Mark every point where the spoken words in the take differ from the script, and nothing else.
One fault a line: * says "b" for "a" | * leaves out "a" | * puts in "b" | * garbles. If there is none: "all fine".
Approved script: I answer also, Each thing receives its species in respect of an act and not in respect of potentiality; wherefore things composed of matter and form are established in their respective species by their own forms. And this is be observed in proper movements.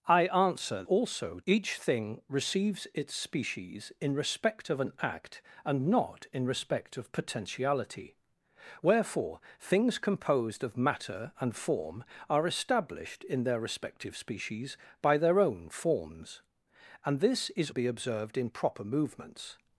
all fine